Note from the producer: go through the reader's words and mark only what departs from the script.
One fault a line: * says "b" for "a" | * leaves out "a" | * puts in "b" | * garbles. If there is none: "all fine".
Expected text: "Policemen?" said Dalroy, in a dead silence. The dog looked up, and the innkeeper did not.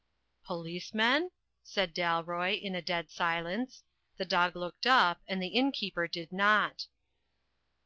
all fine